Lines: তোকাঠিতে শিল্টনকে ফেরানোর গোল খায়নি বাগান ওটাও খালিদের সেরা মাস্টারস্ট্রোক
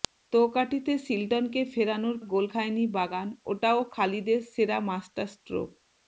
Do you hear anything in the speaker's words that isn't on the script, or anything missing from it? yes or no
no